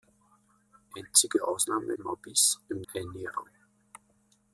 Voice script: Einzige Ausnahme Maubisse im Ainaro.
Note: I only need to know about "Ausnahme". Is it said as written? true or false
true